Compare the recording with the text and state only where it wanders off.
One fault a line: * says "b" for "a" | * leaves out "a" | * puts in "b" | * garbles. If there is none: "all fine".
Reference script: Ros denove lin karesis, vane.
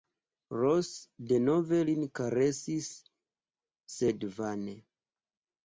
* puts in "sed"